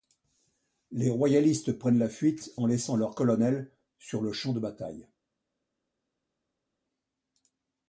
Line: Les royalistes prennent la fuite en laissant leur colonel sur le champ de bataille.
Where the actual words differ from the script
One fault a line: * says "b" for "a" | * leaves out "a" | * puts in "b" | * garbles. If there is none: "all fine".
all fine